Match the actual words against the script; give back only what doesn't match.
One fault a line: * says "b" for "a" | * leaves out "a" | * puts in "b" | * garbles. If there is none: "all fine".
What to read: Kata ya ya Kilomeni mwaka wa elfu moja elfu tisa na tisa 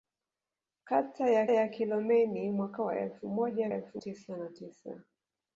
all fine